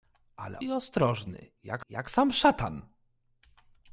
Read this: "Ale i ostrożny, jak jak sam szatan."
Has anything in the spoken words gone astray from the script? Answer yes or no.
no